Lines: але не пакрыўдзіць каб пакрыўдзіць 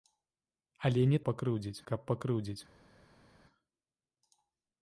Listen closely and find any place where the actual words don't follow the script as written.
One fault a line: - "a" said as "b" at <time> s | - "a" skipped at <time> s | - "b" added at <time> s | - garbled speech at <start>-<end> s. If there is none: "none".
none